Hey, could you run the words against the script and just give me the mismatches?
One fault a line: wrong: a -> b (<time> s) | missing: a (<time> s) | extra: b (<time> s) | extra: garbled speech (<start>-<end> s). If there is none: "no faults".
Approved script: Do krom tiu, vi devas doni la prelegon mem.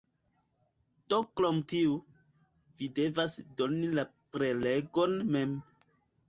no faults